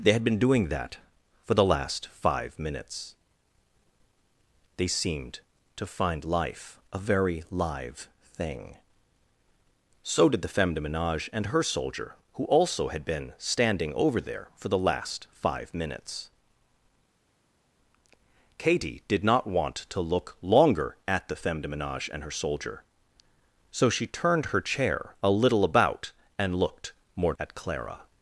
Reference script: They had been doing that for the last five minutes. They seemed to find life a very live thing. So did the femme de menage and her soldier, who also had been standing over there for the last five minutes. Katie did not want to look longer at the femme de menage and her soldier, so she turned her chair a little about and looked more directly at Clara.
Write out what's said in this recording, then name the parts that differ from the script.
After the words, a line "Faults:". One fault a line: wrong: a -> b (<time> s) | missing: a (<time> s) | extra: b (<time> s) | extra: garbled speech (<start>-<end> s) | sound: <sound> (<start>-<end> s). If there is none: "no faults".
They had been doing that for the last five minutes. They seemed to find life a very live thing. So did the femme de menage and her soldier, who also had been standing over there for the last five minutes. Katie did not want to look longer at the femme de menage and her soldier, so she turned her chair a little about and looked more at Clara.
Faults:
missing: directly (27.3 s)